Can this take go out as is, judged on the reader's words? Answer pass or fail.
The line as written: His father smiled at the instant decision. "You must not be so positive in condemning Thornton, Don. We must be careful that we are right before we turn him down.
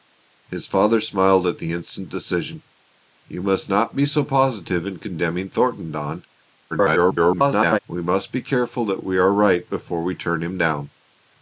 fail